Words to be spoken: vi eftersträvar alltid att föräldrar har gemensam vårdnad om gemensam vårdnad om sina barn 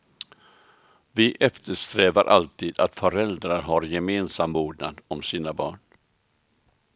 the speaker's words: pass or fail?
fail